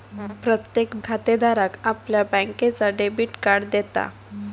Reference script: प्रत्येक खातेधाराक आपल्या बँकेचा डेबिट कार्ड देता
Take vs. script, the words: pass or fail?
pass